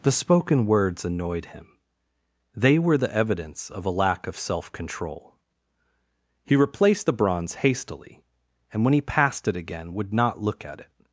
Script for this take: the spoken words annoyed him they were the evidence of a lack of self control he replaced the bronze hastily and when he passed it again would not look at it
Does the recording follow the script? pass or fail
pass